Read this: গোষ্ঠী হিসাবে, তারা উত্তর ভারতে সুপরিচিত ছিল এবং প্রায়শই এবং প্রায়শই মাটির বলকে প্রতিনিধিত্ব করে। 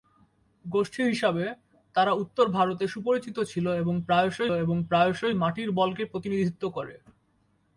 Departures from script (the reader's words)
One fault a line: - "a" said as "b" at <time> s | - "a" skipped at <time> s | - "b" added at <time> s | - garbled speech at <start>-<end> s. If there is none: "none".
none